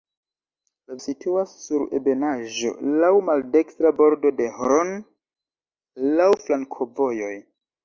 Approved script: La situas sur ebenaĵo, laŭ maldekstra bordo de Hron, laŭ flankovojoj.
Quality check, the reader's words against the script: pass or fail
pass